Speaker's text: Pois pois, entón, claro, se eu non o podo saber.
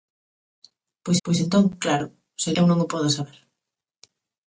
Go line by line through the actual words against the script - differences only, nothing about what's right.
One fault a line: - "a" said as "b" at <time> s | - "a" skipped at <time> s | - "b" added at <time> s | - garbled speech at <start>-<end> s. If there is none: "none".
none